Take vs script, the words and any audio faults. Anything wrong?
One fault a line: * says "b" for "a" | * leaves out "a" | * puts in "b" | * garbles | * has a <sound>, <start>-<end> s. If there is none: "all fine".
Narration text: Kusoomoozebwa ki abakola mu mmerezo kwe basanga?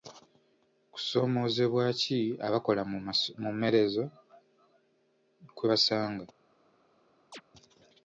* has a chirp, 7.3-7.4 s